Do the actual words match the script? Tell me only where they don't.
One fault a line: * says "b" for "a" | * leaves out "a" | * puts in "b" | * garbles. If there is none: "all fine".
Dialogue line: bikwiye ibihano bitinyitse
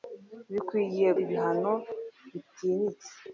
all fine